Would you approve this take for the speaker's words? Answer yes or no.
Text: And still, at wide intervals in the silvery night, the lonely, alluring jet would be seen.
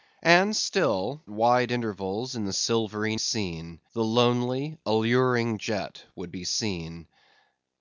no